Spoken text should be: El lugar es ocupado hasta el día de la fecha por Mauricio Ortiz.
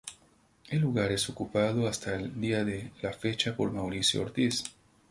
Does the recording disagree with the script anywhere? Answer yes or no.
no